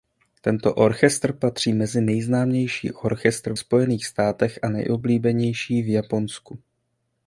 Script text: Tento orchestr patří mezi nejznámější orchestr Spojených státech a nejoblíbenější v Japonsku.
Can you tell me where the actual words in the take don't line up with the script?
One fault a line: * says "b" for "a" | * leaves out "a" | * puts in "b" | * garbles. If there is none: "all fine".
all fine